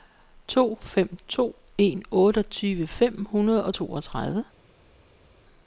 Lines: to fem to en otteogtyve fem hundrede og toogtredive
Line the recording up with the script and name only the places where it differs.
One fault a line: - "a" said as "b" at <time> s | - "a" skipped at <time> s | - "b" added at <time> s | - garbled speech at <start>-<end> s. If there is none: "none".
none